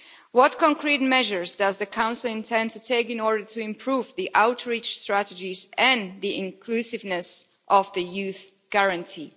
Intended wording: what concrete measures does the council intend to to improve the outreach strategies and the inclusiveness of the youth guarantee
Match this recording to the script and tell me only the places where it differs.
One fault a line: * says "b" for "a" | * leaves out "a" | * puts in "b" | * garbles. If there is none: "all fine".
* puts in "take in order"